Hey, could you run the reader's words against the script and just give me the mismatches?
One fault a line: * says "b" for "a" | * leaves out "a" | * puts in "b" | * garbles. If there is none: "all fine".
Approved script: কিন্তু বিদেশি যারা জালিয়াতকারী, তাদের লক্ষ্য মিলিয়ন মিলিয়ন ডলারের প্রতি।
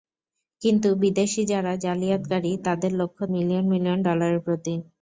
all fine